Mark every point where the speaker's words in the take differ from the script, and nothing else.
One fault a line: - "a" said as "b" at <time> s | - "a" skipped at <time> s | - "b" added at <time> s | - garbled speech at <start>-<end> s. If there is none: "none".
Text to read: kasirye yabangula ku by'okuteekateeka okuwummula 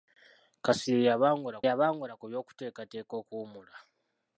- "yabangula" added at 1.7 s